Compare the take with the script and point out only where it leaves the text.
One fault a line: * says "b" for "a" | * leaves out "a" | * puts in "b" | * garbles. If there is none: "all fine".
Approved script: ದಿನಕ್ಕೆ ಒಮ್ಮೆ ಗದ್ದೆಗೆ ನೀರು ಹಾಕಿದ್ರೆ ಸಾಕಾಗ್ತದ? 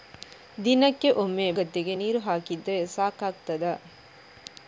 all fine